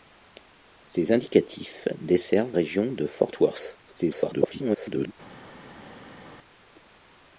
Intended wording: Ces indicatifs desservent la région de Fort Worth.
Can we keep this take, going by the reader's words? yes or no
no